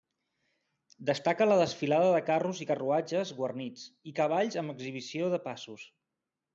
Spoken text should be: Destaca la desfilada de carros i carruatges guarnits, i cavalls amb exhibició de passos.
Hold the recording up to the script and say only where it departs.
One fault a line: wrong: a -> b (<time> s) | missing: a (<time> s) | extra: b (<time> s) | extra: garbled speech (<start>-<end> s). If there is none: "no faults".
no faults